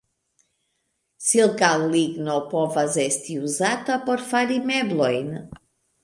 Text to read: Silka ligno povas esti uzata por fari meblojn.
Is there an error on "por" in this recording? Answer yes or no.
no